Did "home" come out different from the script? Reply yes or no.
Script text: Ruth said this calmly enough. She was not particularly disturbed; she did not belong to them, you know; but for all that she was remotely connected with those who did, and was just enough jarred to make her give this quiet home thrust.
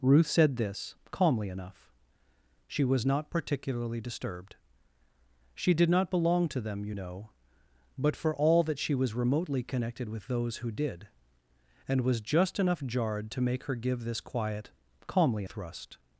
yes